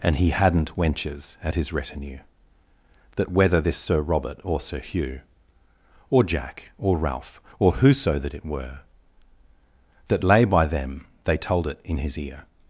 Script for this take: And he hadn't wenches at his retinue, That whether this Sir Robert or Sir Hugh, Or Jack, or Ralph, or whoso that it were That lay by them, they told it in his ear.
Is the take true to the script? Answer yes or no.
yes